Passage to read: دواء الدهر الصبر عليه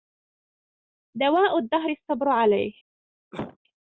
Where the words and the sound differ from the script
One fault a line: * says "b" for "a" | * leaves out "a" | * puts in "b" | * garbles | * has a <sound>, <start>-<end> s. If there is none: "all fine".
* has a cough, 3.3-3.6 s